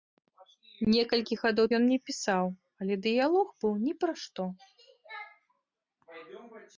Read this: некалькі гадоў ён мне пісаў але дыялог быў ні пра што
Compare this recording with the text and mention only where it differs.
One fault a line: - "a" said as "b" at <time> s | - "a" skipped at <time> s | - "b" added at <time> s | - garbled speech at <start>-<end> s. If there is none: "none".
none